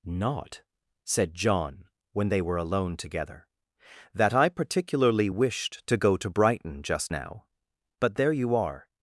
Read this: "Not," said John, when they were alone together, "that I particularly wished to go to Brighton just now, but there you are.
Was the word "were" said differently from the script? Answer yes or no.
no